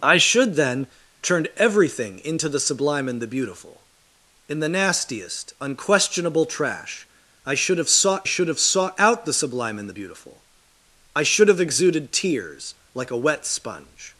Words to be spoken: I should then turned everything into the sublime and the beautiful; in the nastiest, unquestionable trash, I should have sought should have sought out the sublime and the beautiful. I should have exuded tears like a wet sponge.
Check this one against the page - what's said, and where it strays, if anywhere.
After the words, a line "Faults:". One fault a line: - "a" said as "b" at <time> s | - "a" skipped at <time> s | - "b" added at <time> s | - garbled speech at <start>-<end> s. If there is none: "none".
I should then turned everything into the sublime and the beautiful; in the nastiest, unquestionable trash, I should have sought should have sought out the sublime and the beautiful. I should have exuded tears like a wet sponge.
Faults:
none